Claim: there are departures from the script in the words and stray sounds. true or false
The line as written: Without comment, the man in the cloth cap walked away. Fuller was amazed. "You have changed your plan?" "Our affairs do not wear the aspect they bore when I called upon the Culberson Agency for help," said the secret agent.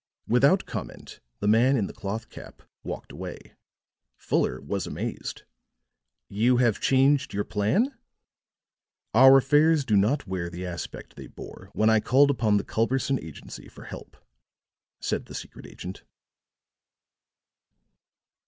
false